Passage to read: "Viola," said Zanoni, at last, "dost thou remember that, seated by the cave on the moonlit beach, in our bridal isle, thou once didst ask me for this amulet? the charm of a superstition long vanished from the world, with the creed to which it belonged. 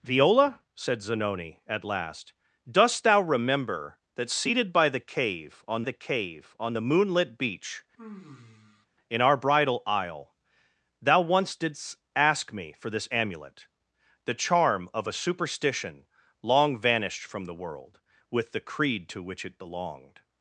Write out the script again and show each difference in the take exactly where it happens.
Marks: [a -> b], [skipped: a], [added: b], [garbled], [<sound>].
"Viola," said Zanoni, at last, "dost thou remember that, seated by the cave on the [added: cave on the] moonlit beach, [sigh] in our bridal isle, thou once didst ask me for this amulet? the charm of a superstition long vanished from the world, with the creed to which it belonged.